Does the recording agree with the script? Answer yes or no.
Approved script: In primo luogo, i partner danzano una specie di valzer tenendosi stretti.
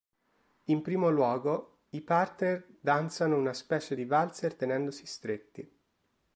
yes